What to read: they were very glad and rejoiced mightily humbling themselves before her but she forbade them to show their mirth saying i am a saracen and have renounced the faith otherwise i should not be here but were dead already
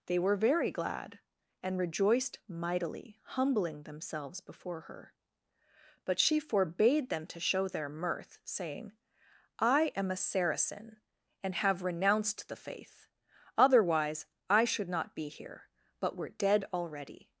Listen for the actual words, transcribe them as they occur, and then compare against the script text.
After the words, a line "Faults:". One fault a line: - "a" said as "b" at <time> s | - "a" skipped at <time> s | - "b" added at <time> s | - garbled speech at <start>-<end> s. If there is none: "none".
they were very glad and rejoiced mightily humbling themselves before her but she forbade them to show their mirth saying i am a saracen and have renounced the faith otherwise i should not be here but were dead already
Faults:
none